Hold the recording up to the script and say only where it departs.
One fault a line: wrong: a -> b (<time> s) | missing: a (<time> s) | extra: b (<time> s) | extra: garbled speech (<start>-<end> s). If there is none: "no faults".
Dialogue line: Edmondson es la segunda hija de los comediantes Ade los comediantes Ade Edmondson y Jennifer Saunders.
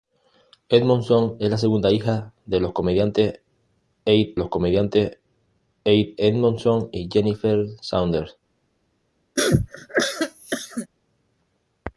no faults